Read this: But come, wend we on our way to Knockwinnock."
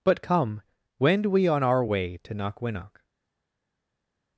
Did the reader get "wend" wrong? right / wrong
right